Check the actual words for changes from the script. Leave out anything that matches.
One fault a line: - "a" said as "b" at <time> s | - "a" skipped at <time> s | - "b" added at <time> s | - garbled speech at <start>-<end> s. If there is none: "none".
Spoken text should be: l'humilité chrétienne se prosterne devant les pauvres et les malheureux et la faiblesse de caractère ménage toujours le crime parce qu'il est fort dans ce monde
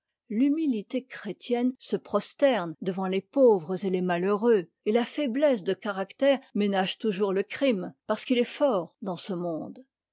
none